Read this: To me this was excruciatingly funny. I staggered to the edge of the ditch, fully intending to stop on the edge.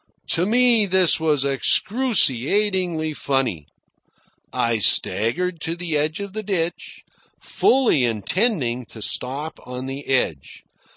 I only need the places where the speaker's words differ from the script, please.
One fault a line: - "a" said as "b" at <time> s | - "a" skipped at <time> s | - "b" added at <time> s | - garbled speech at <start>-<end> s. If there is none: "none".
none